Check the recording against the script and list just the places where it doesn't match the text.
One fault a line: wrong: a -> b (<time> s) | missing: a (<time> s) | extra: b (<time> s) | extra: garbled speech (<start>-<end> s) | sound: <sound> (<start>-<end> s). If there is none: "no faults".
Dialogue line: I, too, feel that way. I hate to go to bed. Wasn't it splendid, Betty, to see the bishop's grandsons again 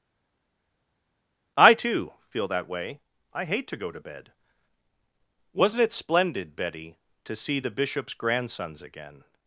no faults